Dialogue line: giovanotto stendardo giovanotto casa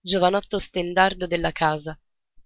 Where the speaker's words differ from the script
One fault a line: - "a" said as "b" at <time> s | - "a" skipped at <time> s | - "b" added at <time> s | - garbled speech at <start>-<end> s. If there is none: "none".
- "giovanotto" said as "della" at 1.3 s